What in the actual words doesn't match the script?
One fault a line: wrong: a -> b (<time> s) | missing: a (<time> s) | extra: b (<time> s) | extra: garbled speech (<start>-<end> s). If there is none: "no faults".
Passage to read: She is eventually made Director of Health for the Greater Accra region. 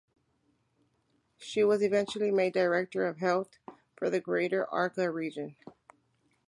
wrong: is -> was (1.6 s)